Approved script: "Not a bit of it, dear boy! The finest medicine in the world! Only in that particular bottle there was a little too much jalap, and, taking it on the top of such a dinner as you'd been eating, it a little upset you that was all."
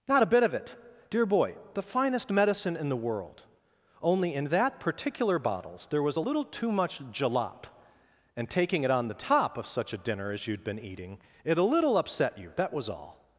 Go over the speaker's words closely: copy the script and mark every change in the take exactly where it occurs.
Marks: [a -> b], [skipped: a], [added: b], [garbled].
"Not a bit of it, dear boy! The finest medicine in the world! Only in that particular [bottle -> bottles] there was a little too much jalap, and, taking it on the top of such a dinner as you'd been eating, it a little upset you that was all."